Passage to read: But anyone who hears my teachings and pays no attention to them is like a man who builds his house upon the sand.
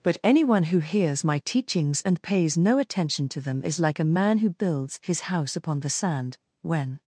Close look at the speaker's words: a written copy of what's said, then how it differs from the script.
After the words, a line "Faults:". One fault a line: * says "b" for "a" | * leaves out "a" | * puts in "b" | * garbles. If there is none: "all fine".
But anyone who hears my teachings and pays no attention to them is like a man who builds his house upon the sand. When
Faults:
* puts in "When"